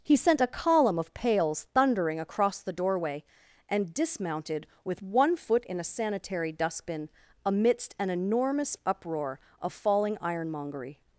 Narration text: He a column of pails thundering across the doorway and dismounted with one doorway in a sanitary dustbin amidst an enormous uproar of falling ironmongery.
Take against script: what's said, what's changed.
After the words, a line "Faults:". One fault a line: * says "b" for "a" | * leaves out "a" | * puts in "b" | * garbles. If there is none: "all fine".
He sent a column of pails thundering across the doorway and dismounted with one foot in a sanitary dustbin amidst an enormous uproar of falling ironmongery.
Faults:
* puts in "sent"
* says "foot" for "doorway"